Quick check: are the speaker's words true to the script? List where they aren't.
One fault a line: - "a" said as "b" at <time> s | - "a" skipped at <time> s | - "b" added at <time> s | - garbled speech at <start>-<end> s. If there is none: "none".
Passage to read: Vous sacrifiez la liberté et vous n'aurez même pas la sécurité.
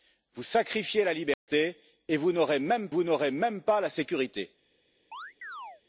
- "vous n'aurez même" added at 2.9 s